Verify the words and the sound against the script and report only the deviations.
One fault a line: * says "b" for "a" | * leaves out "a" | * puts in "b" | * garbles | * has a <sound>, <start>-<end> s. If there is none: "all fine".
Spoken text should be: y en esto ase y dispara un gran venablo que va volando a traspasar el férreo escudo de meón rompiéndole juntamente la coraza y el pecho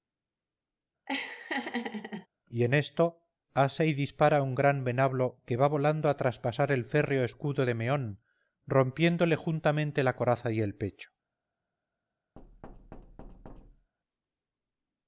* has a laugh, 1.1-2.3 s
* has a thud, 12.4-13.9 s